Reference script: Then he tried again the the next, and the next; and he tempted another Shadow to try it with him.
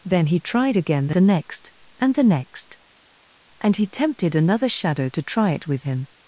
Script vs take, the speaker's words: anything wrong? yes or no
no